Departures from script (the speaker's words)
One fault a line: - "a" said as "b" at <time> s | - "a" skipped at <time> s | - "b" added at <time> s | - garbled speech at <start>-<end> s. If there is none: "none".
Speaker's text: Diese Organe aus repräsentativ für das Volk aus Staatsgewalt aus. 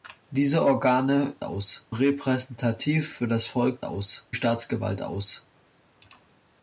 none